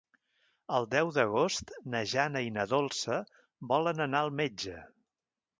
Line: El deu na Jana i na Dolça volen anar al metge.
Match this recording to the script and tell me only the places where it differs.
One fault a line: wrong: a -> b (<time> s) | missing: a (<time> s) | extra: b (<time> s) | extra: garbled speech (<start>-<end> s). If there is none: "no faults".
extra: d'agost (1.2 s)